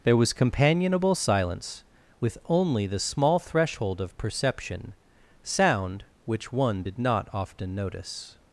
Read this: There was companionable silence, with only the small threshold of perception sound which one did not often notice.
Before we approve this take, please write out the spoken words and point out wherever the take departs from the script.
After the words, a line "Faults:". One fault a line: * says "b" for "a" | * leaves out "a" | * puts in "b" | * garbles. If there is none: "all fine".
There was companionable silence, with only the small threshold of perception sound which one did not often notice.
Faults:
all fine